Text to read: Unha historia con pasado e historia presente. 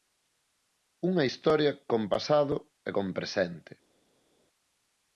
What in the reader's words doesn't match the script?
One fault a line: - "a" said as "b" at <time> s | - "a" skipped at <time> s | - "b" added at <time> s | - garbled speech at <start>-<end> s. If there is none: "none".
- "historia" said as "con" at 2.9 s